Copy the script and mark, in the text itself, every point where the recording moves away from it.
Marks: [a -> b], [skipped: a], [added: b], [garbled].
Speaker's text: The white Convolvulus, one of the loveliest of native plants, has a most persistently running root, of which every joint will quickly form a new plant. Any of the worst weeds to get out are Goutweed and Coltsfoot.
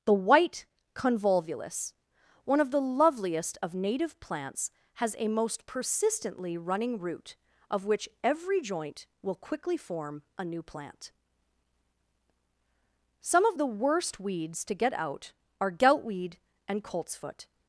The white Convolvulus, one of the loveliest of native plants, has a most persistently running root, of which every joint will quickly form a new plant. [Any -> Some] of the worst weeds to get out are Goutweed and Coltsfoot.